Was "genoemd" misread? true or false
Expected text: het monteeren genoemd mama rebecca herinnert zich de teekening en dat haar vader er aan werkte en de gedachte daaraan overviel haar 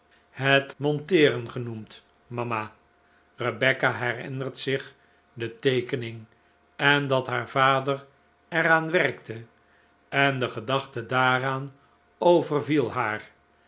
false